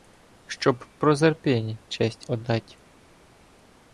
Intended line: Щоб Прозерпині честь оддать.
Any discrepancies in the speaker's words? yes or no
no